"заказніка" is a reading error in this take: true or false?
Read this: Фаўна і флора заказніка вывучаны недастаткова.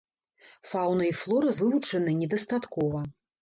true